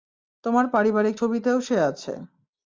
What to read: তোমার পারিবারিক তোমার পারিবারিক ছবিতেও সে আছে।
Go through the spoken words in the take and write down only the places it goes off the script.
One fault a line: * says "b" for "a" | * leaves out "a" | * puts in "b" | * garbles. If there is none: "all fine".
* leaves out "তোমার পারিবারিক"